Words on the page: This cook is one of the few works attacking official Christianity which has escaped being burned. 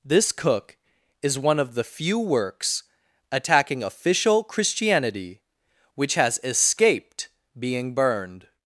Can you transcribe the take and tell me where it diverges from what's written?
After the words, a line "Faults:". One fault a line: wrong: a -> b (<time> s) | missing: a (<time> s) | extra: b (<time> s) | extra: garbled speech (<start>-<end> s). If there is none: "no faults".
This cook is one of the few works attacking official Christianity which has escaped being burned.
Faults:
no faults